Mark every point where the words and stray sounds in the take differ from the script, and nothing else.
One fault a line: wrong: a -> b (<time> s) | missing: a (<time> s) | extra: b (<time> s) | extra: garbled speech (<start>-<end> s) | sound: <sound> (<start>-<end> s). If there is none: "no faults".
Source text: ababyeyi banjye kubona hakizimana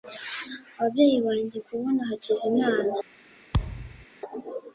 sound: thud (3.5-4.1 s)